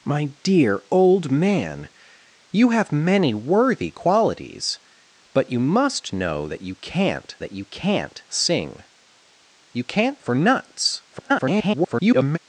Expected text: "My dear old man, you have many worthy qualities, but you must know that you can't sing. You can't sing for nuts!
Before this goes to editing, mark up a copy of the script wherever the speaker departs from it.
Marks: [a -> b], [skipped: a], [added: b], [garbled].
"My dear old man, you have many worthy qualities, but you must know that you can't [sing. -> that] You can't sing [added: You can't] for nuts! [garbled]